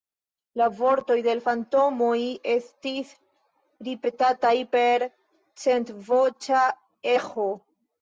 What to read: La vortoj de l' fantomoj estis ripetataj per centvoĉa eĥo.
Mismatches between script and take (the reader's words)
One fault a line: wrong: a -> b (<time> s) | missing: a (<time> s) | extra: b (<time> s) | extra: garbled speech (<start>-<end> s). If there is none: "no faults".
no faults